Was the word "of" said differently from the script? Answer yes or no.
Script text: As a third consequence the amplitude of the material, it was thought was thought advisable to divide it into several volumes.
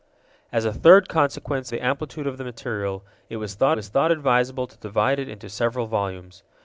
no